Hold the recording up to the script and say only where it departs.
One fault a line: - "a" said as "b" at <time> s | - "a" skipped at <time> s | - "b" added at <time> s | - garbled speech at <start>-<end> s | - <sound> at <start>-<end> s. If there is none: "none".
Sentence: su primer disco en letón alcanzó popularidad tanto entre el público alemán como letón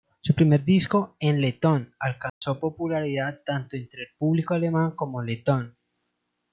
- dropout at 2.3-2.4 s